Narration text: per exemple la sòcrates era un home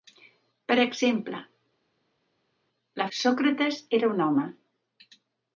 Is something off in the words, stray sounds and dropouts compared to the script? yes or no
no